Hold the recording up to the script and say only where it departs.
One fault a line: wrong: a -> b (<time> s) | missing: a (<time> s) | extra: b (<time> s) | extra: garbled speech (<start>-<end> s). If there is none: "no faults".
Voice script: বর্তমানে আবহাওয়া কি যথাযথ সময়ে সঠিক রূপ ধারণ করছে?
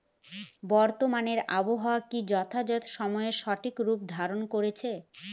no faults